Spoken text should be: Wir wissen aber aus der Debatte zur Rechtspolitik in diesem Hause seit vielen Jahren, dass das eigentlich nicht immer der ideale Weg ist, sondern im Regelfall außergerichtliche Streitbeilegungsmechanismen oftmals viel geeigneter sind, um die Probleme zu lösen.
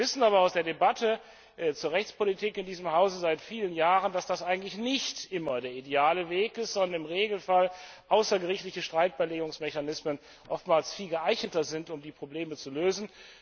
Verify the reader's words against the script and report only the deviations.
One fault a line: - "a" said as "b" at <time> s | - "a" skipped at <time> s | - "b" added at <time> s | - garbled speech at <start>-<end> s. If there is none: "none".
none